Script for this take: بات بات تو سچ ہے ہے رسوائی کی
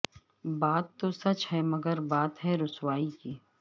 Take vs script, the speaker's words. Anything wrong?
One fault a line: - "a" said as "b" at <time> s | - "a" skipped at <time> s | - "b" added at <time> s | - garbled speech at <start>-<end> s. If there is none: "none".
- "بات" skipped at 0.8 s
- "مگر بات" added at 1.7 s